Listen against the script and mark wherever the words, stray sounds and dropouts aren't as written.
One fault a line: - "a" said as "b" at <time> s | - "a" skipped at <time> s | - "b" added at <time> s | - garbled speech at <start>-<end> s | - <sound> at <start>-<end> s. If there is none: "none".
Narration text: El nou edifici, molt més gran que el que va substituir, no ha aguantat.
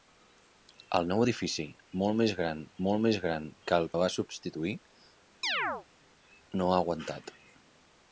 - "molt més gran" added at 2.9 s
- "que" skipped at 3.9 s
- chirp at 5.4-5.9 s